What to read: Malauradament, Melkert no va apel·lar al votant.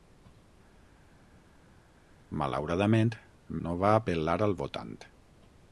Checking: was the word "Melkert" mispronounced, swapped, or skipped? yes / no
yes